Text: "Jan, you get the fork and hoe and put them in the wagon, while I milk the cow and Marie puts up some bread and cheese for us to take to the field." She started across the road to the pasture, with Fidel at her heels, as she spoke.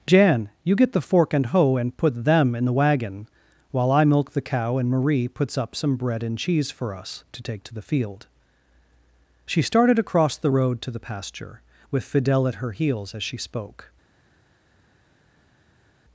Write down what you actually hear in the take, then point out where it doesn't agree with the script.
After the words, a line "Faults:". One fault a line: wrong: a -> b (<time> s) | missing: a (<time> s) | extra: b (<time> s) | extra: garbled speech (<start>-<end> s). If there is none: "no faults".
"Jan, you get the fork and hoe and put them in the wagon, while I milk the cow and Marie puts up some bread and cheese for us to take to the field." She started across the road to the pasture, with Fidel at her heels, as she spoke.
Faults:
no faults